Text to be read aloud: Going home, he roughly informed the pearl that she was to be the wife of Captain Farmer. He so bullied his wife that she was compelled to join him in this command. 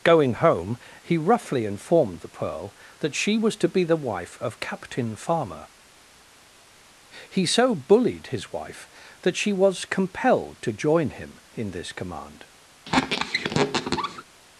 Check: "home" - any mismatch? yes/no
no